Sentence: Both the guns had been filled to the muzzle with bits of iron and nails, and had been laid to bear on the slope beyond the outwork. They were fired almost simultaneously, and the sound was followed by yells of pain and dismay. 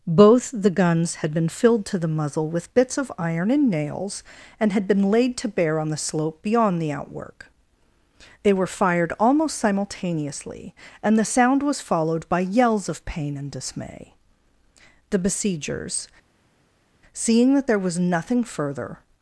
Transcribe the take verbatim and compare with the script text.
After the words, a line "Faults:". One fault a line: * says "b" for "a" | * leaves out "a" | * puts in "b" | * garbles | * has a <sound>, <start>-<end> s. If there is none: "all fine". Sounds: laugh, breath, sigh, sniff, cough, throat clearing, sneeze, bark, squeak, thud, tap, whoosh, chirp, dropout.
Both the guns had been filled to the muzzle with bits of iron and nails, and had been laid to bear on the slope beyond the outwork. They were fired almost simultaneously, and the sound was followed by yells of pain and dismay. The besiegers, seeing that there was nothing further
Faults:
* puts in "The besiegers seeing that there was nothing further"